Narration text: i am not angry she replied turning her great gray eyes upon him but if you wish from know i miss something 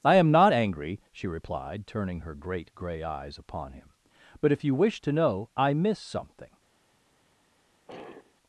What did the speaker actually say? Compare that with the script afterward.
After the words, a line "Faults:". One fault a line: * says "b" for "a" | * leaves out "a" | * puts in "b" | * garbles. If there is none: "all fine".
i am not angry she replied turning her great gray eyes upon him but if you wish to know i miss something
Faults:
* says "to" for "from"